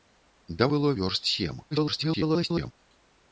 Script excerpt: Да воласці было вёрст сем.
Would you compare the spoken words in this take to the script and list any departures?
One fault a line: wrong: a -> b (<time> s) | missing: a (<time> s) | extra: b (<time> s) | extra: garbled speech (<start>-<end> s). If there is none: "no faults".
missing: воласці (0.7 s)
extra: garbled speech (1.7-2.7 s)